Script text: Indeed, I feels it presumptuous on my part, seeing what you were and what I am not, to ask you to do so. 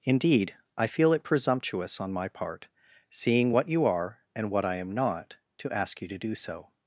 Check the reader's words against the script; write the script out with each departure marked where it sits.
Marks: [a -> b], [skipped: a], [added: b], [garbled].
Indeed, I [feels -> feel] it presumptuous on my part, seeing what you [were -> are] and what I am not, to ask you to do so.